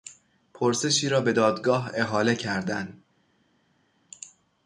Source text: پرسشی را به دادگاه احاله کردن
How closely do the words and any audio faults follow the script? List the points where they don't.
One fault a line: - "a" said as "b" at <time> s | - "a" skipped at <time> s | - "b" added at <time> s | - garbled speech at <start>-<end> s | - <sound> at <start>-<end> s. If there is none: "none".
none